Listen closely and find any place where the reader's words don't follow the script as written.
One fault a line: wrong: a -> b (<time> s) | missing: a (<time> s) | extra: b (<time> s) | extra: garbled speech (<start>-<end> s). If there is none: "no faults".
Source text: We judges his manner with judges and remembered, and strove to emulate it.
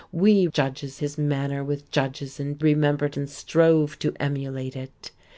no faults